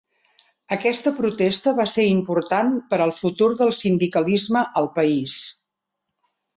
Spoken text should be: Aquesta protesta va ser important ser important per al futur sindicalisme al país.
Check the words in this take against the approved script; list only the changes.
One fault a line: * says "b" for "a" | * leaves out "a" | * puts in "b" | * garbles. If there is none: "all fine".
* leaves out "ser important"
* puts in "del"